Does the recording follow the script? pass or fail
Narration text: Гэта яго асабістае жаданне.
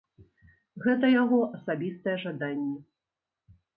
pass